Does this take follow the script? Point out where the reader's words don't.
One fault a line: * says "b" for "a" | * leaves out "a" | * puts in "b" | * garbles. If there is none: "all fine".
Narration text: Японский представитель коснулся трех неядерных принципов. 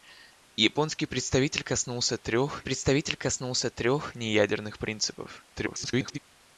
* puts in "представитель коснулся трех"
* garbles